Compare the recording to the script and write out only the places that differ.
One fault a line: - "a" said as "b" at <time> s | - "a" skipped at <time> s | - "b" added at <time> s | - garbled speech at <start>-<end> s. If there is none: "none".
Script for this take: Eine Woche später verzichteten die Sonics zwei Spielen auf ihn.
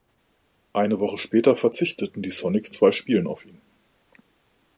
none